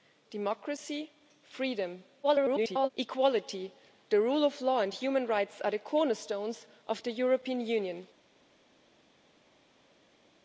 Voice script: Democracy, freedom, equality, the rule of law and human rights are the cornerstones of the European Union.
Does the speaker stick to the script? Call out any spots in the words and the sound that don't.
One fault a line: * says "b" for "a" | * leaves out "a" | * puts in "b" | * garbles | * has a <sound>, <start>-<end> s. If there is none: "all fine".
* garbles